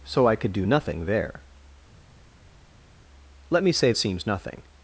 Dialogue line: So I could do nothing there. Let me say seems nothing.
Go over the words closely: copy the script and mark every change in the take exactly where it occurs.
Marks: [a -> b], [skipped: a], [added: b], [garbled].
So I could do nothing there. Let me say seems nothing.